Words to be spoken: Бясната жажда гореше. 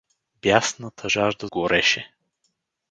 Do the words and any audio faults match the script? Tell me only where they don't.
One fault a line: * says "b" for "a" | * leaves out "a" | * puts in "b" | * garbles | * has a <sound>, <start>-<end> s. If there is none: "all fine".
all fine